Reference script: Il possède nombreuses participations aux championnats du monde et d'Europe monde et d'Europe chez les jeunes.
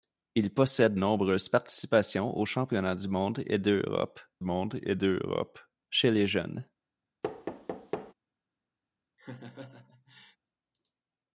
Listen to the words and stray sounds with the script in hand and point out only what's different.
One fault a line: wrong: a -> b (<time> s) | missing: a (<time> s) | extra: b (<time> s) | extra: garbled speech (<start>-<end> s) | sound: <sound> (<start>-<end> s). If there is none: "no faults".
sound: thud (7.2-8.1 s)
sound: laugh (9.2-10.4 s)